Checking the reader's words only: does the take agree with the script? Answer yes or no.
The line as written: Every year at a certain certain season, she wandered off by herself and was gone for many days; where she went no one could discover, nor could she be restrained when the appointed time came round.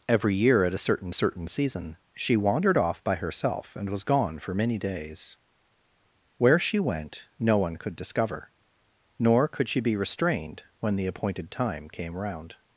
yes